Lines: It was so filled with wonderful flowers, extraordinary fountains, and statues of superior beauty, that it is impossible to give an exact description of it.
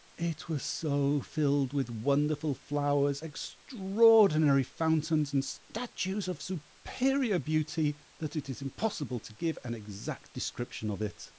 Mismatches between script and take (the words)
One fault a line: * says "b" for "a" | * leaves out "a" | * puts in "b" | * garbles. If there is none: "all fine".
all fine